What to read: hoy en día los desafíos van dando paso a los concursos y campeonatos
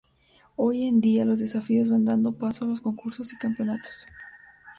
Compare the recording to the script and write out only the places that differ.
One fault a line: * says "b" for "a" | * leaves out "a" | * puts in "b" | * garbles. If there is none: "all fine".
all fine